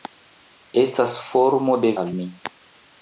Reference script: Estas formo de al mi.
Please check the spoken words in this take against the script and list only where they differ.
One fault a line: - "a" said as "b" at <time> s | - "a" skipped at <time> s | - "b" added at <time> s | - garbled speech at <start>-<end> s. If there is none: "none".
none